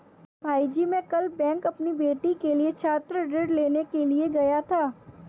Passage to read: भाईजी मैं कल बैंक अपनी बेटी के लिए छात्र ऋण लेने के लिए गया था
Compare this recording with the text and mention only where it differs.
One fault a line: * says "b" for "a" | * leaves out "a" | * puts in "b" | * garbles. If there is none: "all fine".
all fine